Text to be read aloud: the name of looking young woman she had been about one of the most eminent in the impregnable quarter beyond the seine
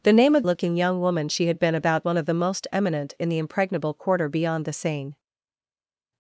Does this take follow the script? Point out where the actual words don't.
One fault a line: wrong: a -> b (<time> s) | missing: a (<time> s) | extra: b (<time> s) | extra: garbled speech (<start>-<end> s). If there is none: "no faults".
no faults